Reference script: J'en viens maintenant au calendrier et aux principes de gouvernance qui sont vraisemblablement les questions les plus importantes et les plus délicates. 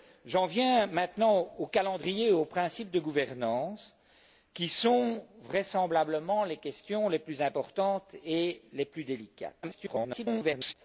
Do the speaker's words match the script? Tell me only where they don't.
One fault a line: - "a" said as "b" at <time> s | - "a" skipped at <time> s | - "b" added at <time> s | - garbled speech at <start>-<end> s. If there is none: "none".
- garbled speech at 9.6-10.7 s